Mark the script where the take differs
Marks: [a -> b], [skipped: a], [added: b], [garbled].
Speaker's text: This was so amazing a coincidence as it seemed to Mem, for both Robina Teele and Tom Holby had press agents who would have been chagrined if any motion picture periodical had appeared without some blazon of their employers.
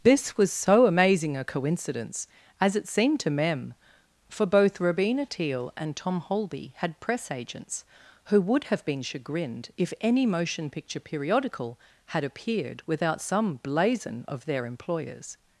This was so amazing a coincidence as it seemed to Mem, for both Robina Teele and Tom Holby had press agents who would have been chagrined if any motion picture periodical had appeared without some blazon of their employers.